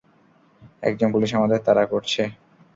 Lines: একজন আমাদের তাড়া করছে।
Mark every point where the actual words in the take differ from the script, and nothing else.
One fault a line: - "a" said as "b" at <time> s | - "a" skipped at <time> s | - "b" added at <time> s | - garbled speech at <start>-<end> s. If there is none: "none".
- "পুলিশ" added at 1.1 s